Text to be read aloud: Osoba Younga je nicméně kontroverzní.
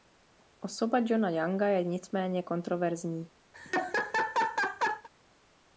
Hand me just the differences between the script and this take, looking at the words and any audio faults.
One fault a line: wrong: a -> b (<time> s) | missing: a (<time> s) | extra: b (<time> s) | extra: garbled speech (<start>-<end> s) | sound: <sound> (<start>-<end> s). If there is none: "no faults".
extra: Johna (1.1 s)
sound: laugh (3.5-5.1 s)